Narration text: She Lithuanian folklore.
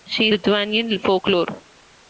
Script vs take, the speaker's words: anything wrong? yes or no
no